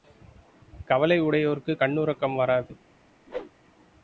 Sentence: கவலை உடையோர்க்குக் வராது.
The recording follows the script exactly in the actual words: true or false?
false